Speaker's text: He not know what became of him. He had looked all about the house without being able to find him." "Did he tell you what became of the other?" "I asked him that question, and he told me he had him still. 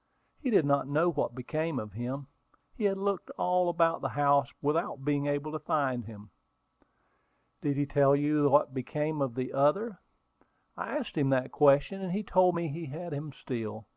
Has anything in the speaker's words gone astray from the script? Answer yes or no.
yes